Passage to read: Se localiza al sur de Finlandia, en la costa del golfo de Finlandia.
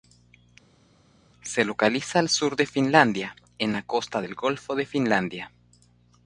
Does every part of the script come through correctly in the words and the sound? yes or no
yes